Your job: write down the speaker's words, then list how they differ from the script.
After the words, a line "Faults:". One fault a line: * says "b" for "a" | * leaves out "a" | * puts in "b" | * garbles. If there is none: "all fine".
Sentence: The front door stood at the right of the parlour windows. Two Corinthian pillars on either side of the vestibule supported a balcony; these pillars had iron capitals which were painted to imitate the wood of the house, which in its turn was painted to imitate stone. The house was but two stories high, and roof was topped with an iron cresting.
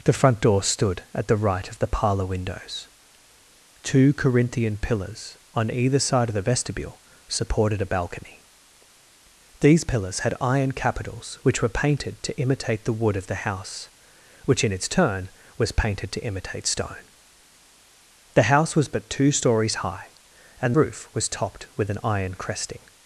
The front door stood at the right of the parlour windows. Two Corinthian pillars on either side of the vestibule supported a balcony; these pillars had iron capitals which were painted to imitate the wood of the house, which in its turn was painted to imitate stone. The house was but two stories high, and roof was topped with an iron cresting.
Faults:
all fine